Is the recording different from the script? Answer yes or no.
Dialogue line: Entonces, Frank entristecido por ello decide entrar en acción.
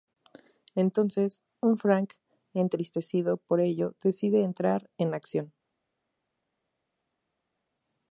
yes